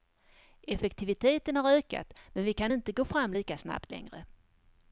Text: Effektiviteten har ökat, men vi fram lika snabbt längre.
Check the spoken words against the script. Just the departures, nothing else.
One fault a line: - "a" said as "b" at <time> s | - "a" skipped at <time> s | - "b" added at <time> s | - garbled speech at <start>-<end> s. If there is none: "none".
- "kan inte gå" added at 2.5 s